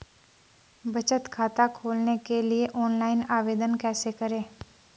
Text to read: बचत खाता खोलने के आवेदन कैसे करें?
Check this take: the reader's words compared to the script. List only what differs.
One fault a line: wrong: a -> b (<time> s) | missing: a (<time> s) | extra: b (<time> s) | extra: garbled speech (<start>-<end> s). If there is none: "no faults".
extra: लिए ऑनलाइन (2.4 s)